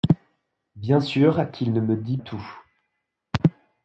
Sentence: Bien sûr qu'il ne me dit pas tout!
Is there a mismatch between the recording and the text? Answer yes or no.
yes